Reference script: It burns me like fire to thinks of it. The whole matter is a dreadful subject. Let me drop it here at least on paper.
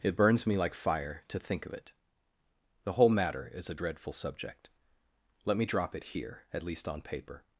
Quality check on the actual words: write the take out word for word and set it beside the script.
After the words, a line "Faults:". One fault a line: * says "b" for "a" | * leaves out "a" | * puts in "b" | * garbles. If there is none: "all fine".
It burns me like fire to think of it. The whole matter is a dreadful subject. Let me drop it here at least on paper.
Faults:
* says "think" for "thinks"